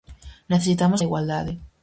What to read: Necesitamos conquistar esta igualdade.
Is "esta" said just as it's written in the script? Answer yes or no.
no